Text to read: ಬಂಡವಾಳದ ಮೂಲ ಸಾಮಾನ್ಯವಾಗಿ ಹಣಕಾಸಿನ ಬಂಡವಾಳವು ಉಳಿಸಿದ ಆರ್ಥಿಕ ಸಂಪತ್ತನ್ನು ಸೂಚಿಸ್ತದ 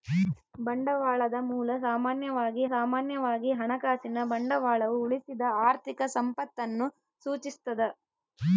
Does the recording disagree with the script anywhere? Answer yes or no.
yes